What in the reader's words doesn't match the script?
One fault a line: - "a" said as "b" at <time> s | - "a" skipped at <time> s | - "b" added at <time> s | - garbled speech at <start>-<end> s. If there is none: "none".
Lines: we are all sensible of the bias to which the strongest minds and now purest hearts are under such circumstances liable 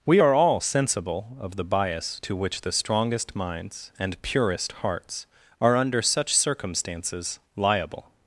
- "now" skipped at 4.2 s